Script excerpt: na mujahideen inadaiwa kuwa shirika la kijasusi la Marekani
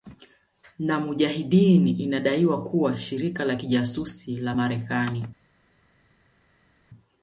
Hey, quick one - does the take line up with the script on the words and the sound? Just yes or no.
yes